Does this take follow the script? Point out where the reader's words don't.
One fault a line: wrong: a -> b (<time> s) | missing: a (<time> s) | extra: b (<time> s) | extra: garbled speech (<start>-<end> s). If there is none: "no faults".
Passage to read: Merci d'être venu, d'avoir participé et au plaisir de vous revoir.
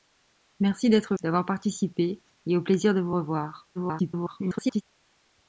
missing: venu (1.1 s)
extra: garbled speech (3.7-4.8 s)